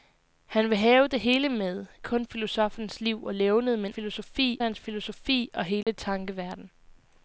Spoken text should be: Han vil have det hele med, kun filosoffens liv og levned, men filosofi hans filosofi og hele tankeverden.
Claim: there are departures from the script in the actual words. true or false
false